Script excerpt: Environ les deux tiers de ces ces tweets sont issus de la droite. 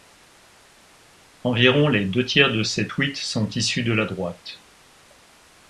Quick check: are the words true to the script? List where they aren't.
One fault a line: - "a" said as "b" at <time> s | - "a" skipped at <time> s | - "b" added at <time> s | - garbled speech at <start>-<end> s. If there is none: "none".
- "ces" skipped at 2.9 s